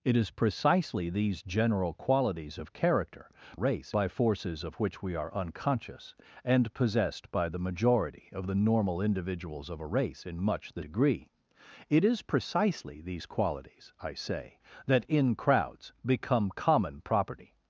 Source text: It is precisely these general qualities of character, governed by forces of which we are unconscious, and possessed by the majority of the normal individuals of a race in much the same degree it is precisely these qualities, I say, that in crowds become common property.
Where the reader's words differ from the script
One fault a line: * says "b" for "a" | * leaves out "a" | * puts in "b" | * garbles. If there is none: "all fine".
* says "race" for "governed"
* leaves out "same"